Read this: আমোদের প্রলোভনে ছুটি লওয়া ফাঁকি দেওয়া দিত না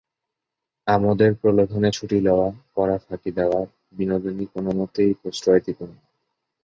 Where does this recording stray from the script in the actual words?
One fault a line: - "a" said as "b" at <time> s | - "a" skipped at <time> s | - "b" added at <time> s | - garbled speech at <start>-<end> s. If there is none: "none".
- "পড়া" added at 2.7 s
- "বিনোদিনী কোনোমতেই প্রশ্রয়" added at 3.9 s